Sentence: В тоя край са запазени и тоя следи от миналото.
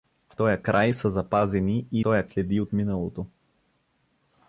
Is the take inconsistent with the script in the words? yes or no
no